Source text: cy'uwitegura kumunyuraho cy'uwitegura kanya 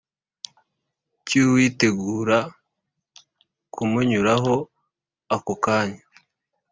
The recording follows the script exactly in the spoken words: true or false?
false